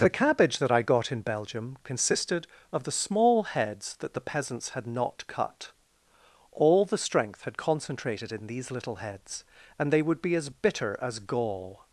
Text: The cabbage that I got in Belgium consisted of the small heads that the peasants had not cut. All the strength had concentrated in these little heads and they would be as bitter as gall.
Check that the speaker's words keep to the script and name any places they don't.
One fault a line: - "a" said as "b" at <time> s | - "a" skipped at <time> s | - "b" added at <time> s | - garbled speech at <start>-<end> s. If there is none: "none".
none